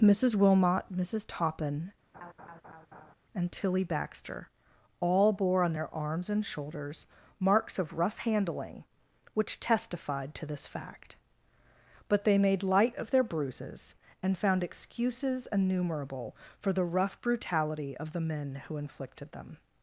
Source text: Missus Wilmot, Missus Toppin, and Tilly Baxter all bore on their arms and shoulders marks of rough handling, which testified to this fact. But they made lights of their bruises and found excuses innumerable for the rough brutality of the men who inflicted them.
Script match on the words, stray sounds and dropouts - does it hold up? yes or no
no